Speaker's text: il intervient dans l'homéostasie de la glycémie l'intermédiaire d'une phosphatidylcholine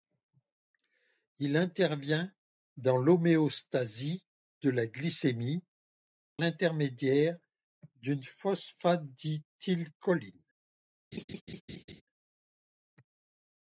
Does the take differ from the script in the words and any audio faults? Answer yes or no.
yes